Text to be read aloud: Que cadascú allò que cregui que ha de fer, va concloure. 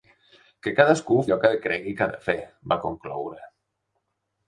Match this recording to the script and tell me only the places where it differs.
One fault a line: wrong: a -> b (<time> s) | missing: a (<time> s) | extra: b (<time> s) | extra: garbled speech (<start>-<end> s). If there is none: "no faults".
no faults